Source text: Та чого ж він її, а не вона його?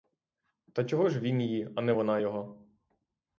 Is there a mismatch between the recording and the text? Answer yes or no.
no